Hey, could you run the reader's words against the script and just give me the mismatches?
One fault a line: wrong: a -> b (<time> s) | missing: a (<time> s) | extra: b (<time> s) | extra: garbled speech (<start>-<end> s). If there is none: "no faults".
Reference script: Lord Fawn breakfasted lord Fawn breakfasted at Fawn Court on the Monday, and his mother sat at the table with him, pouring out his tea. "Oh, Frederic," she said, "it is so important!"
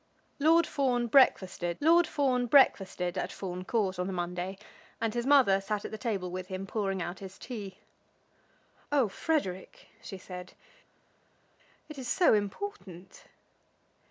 no faults